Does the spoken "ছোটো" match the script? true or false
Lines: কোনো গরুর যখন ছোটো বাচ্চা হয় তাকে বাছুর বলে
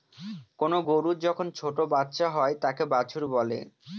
true